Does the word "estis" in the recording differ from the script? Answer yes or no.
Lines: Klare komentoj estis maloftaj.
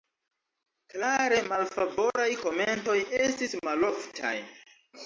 no